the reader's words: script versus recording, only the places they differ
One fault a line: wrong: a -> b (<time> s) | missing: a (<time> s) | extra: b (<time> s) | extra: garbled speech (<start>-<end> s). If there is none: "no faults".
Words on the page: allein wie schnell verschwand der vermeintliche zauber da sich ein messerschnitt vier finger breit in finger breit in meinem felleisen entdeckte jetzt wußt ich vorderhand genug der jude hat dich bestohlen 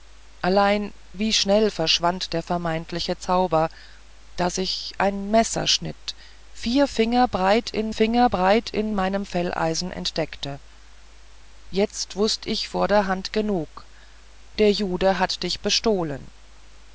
no faults